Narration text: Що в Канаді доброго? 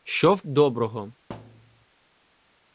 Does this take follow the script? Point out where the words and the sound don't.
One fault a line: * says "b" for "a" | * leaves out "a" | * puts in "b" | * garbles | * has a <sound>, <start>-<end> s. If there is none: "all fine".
* leaves out "Канаді"
* has a thud, 1.3-1.9 s